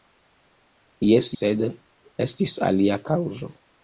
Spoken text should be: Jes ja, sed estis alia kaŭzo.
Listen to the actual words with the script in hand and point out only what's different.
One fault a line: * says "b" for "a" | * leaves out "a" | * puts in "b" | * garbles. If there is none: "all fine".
* leaves out "ja"